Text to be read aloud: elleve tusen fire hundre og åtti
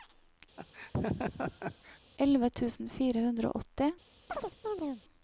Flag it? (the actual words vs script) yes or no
no